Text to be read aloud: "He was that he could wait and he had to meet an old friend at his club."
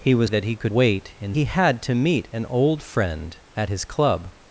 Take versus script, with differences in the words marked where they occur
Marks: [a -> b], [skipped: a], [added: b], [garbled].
"He was that he could wait and he had to meet an old friend at his club."